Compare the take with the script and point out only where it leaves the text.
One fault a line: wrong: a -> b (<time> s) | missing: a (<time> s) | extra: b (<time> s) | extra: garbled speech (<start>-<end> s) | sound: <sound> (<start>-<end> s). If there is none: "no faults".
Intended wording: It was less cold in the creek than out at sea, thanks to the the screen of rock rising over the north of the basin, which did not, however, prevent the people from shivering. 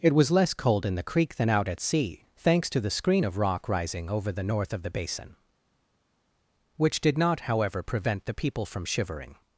missing: the (2.9 s)